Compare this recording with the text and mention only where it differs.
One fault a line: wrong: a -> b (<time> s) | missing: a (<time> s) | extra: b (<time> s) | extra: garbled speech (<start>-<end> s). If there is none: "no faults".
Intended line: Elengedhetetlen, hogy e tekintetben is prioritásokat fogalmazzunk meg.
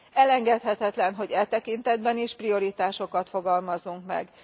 no faults